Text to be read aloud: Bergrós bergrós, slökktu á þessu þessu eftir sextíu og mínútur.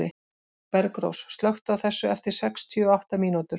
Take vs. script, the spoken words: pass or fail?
fail